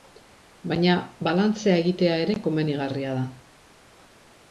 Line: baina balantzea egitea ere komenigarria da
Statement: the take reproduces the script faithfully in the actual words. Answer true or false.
true